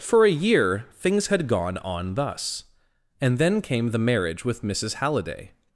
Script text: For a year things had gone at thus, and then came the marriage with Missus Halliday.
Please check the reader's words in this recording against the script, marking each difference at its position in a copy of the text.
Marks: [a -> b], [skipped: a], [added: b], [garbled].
For a year things had gone [at -> on] thus, and then came the marriage with Missus Halliday.